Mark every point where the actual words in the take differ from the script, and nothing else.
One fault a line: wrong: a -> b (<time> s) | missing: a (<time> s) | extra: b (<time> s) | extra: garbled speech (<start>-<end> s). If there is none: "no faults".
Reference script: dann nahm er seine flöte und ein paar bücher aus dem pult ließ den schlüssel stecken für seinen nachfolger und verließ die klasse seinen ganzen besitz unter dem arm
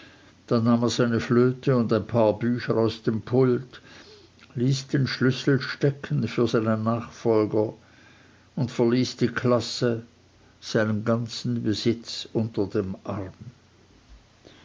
no faults